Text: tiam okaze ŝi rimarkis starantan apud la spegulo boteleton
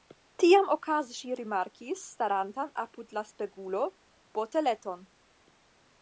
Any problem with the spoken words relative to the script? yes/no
no